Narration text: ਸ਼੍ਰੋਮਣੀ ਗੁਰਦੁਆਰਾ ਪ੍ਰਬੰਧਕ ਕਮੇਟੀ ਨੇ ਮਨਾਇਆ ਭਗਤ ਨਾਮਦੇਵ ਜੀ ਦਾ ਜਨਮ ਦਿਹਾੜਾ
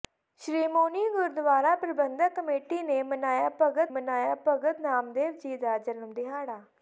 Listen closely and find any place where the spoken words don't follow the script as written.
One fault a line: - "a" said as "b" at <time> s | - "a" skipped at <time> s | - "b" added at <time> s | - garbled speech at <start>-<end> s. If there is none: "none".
- "ਮਨਾਇਆ ਭਗਤ" added at 3.9 s